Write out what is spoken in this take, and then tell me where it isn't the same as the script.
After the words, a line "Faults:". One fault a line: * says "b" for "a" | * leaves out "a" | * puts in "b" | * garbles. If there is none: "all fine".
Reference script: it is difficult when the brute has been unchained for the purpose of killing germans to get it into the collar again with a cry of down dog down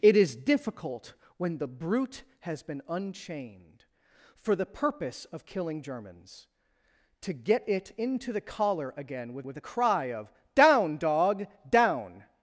it is difficult when the brute has been unchained for the purpose of killing germans to get it into the collar again with with a cry of down dog down
Faults:
* puts in "with"